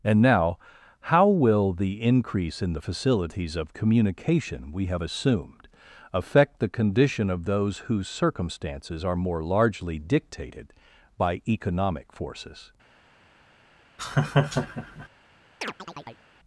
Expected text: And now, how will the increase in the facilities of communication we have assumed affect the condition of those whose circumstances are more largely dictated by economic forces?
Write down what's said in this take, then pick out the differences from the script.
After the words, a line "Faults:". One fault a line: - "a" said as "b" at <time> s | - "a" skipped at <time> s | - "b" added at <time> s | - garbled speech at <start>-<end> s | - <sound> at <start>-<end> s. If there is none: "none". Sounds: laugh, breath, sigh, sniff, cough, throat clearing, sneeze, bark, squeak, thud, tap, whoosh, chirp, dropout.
And now, how will the increase in the facilities of communication we have assumed affect the condition of those whose circumstances are more largely dictated by economic forces?
Faults:
- laugh at 14.0-15.1 s
- chirp at 15.6-16.2 s